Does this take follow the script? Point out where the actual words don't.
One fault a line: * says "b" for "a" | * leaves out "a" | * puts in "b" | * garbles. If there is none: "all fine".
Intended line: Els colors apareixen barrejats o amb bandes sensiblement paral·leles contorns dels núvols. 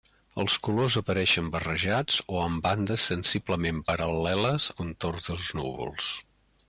all fine